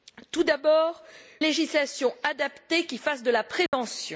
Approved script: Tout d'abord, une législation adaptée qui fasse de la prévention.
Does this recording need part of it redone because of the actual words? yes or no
yes